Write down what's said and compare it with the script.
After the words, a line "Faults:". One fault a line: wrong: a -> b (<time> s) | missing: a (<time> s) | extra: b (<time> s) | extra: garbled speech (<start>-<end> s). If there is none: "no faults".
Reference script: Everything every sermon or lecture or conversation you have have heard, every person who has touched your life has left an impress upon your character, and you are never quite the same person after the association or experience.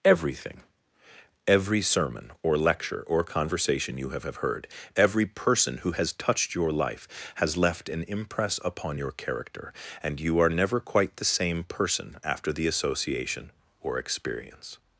Everything every sermon or lecture or conversation you have have heard, every person who has touched your life has left an impress upon your character, and you are never quite the same person after the association or experience.
Faults:
no faults